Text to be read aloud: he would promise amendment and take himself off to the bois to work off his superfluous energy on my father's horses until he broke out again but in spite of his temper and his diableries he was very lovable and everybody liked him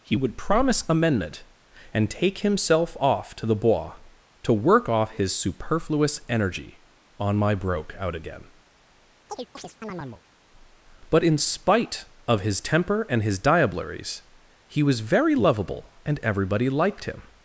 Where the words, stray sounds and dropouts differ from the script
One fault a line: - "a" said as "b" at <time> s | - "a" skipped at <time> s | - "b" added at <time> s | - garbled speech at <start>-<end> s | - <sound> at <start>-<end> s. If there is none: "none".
- "father's horses until he" skipped at 7.5 s
- chirp at 9.3-10.2 s